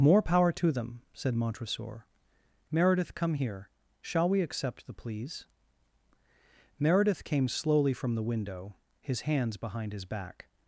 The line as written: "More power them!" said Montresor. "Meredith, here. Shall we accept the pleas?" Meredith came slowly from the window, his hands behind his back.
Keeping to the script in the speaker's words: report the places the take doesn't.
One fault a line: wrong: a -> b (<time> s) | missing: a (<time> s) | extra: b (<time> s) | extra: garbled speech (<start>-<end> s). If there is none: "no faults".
extra: to (0.5 s)
extra: come (3.1 s)